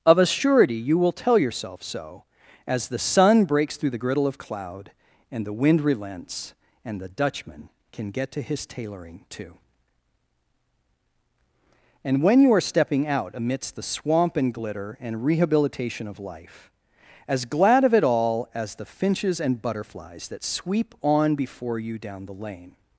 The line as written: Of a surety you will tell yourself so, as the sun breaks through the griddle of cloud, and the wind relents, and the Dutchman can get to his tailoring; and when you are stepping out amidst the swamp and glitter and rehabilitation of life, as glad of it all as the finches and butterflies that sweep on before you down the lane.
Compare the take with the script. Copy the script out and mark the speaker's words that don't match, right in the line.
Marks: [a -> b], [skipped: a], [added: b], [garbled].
Of a surety you will tell yourself so, as the sun breaks through the griddle of cloud, and the wind relents, and the Dutchman can get to his tailoring; [added: too] and when you are stepping out amidst the swamp and glitter and rehabilitation of life, as glad of it all as the finches and butterflies that sweep on before you down the lane.